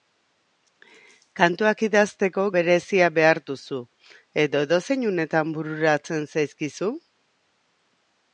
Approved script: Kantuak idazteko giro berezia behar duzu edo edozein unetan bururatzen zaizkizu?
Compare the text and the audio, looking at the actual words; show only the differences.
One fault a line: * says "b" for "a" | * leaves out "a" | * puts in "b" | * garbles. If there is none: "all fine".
* leaves out "giro"